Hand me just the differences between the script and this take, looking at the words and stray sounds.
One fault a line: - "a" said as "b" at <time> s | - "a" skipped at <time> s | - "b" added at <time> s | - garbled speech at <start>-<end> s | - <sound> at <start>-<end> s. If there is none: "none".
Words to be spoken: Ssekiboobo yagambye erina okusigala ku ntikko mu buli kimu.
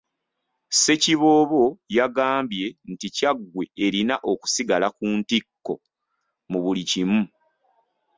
- "nti Kyaggwe" added at 2.9 s